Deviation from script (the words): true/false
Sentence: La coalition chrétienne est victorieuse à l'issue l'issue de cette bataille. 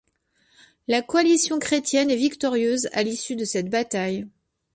true